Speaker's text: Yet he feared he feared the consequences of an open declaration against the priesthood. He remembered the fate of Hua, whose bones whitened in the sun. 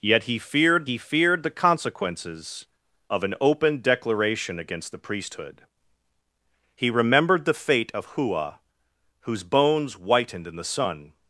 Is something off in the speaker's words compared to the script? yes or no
no